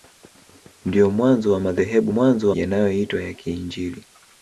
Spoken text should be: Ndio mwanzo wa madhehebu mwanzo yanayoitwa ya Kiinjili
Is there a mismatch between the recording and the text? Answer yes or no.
no